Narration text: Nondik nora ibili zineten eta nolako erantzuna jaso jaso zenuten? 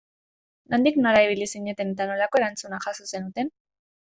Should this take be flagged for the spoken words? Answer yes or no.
yes